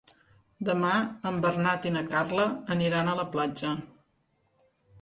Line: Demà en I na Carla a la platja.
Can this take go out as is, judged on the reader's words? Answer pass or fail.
fail